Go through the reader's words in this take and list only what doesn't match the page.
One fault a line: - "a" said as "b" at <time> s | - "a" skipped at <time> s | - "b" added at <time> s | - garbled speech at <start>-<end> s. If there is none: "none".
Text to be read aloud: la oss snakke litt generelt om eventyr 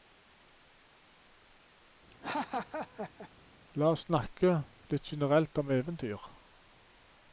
none